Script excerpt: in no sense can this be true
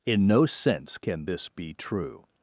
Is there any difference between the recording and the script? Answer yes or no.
no